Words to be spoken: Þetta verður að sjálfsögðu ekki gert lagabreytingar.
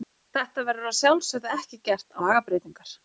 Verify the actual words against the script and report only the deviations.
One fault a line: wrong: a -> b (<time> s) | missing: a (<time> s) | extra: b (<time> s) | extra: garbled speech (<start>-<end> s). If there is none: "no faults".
no faults